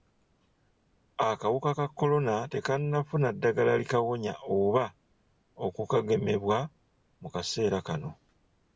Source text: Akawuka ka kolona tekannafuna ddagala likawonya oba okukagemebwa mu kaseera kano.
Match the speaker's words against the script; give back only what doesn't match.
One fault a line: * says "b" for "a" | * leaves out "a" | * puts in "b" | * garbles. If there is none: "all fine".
all fine